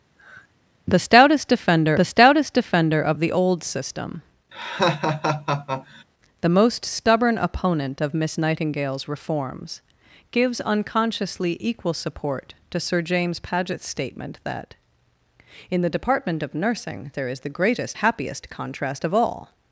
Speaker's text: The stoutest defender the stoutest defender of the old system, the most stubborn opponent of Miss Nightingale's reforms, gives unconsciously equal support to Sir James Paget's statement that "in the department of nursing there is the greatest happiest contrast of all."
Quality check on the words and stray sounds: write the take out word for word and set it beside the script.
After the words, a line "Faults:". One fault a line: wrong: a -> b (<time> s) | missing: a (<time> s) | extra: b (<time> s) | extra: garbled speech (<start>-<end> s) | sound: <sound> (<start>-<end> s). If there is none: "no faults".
The stoutest defender the stoutest defender of the old system, the most stubborn opponent of Miss Nightingale's reforms, gives unconsciously equal support to Sir James Paget's statement that "in the department of nursing there is the greatest happiest contrast of all."
Faults:
sound: sigh (0.2-0.5 s)
sound: laugh (4.5-6.0 s)